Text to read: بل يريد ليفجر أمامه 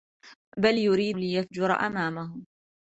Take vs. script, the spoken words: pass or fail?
pass